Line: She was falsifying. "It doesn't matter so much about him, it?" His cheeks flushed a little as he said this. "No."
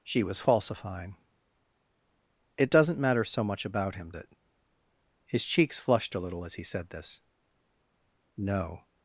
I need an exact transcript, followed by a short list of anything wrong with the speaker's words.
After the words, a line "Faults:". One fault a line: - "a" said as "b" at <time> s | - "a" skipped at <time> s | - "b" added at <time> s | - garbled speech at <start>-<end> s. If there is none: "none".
She was falsifying. "It doesn't matter so much about him, it?" His cheeks flushed a little as he said this. "No."
Faults:
none